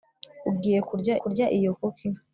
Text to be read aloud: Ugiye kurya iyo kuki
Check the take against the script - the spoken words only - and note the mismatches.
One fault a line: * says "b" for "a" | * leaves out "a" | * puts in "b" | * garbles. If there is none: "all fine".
* puts in "kurya"